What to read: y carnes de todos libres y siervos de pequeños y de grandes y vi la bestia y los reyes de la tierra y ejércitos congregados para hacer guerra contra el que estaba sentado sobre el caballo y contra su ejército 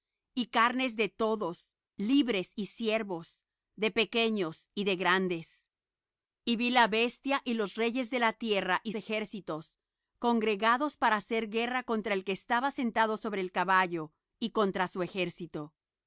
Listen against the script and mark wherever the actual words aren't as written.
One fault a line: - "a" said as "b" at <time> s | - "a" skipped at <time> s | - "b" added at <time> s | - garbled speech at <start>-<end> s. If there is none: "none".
none